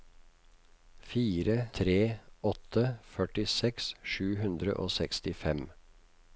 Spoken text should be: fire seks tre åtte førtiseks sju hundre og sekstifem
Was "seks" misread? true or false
true